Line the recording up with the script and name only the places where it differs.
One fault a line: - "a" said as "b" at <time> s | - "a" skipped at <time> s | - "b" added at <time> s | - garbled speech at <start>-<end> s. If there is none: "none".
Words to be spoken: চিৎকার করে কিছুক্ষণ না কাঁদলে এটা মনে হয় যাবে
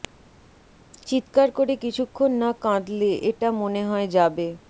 none